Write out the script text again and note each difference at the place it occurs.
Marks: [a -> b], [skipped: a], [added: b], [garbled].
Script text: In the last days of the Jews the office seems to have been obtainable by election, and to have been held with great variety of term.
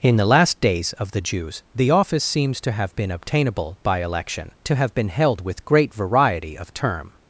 In the last days of the Jews the office seems to have been obtainable by election, [skipped: and] to have been held with great variety of term.